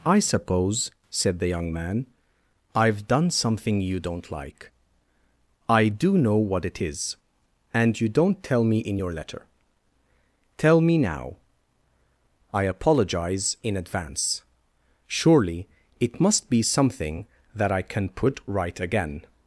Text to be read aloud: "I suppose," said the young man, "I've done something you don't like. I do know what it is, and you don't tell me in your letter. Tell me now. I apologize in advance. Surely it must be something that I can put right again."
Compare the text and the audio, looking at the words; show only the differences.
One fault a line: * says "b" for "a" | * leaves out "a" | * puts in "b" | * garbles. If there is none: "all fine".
all fine